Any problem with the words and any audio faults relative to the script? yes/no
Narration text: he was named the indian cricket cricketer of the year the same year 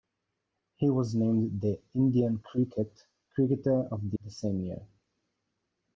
yes